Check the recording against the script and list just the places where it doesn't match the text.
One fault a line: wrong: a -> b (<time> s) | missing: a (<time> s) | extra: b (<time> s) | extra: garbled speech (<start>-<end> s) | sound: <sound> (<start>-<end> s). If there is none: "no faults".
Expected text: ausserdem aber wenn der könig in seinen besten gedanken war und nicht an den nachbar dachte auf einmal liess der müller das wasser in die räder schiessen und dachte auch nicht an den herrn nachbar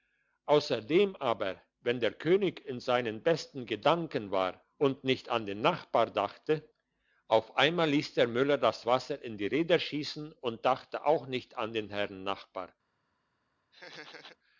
sound: laugh (13.7-14.4 s)